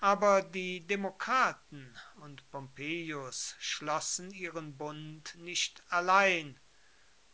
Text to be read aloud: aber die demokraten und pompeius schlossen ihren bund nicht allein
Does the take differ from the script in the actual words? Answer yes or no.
no